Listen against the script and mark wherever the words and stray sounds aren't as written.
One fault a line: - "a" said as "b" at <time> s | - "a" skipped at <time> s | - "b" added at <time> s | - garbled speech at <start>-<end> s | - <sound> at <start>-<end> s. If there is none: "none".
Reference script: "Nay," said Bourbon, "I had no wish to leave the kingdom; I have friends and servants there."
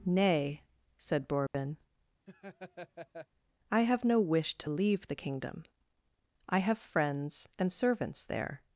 - dropout at 1.5-1.5 s
- laugh at 2.3-3.3 s
- "had" said as "have" at 3.8 s